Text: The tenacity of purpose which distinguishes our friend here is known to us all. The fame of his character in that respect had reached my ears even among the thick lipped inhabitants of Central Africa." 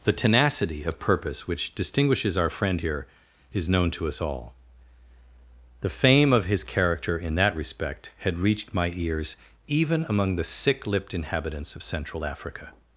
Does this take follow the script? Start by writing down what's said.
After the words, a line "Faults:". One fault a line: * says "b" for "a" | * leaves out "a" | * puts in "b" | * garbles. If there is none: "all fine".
The tenacity of purpose which distinguishes our friend here is known to us all. The fame of his character in that respect had reached my ears even among the sick lipped inhabitants of Central Africa."
Faults:
* says "sick" for "thick"